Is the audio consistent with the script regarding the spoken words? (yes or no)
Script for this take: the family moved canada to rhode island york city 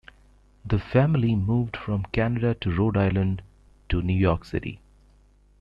no